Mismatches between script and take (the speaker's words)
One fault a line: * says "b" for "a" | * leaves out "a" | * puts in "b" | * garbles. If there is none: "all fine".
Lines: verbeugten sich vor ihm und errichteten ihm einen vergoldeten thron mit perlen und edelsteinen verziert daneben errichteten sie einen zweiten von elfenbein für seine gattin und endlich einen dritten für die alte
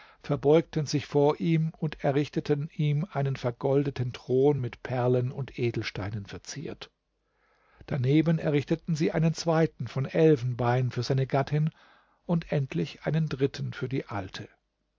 all fine